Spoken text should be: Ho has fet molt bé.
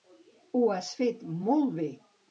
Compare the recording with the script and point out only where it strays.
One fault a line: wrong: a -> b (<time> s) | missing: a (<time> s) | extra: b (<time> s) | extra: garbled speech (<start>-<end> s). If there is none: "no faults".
no faults